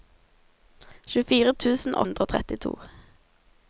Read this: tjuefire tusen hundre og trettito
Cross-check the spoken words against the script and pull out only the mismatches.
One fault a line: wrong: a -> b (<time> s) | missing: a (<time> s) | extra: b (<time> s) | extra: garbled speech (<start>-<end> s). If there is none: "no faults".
no faults